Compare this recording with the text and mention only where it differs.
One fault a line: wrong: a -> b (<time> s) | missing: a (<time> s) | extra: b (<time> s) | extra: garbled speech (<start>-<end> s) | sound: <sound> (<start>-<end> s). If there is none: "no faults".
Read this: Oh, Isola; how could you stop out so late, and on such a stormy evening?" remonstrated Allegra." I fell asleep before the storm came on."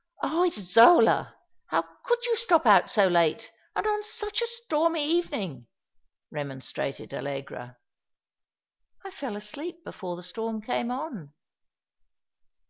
no faults